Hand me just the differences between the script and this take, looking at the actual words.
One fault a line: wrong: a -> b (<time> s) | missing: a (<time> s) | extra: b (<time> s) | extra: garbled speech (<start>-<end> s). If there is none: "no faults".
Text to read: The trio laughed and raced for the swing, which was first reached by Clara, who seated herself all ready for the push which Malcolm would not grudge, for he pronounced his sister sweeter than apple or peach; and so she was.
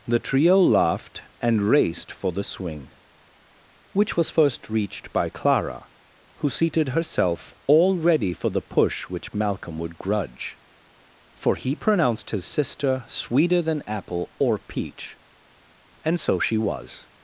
missing: not (10.0 s)